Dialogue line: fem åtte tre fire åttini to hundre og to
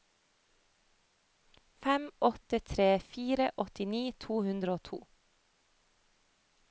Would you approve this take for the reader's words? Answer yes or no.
yes